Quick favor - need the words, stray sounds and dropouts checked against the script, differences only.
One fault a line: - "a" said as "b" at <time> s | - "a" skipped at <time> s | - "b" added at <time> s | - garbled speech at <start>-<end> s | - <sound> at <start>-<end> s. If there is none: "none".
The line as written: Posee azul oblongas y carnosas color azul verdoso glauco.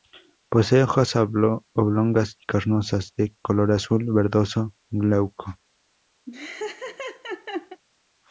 - "azul" said as "hojas" at 0.8 s
- "de" added at 3.2 s
- laugh at 6.3-7.8 s